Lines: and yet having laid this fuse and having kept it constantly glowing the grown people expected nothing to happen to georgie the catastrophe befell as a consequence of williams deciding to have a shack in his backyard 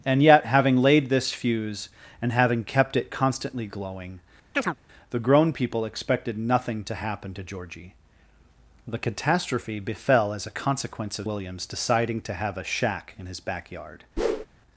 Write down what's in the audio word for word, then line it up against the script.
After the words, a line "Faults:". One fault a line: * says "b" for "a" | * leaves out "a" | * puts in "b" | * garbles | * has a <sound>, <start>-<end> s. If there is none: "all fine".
and yet having laid this fuse and having kept it constantly glowing the grown people expected nothing to happen to georgie the catastrophe befell as a consequence of williams deciding to have a shack in his backyard
Faults:
* has a chirp, 4.5-4.8 s
* has a whoosh, 14.2-14.5 s